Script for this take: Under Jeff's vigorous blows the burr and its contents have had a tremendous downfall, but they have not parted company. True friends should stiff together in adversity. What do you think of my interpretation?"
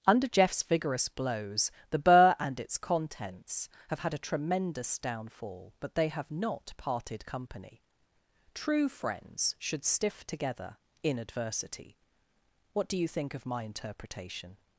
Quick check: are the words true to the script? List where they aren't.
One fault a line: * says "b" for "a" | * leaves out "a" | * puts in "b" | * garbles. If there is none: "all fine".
all fine